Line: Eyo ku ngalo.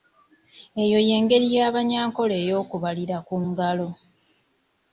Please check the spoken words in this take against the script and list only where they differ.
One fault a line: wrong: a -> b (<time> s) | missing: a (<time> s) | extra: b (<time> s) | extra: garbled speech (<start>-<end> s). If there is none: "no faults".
extra: y'engeri y'Abanyankole ey'okubalira (1.1 s)